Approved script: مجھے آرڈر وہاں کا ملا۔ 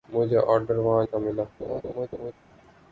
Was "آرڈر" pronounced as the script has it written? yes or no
yes